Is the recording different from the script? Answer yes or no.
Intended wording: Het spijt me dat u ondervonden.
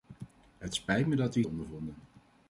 no